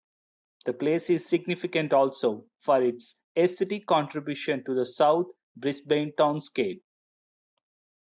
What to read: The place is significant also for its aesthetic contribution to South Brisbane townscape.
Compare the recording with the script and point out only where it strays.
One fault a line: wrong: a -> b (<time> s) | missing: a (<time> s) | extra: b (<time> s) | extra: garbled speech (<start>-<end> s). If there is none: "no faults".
extra: the (4.7 s)